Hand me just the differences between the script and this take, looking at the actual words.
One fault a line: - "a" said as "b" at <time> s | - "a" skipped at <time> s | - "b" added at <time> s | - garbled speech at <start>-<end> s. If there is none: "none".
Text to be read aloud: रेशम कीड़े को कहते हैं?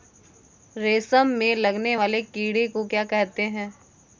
- "में लगने वाले" added at 1.3 s
- "क्या" added at 2.8 s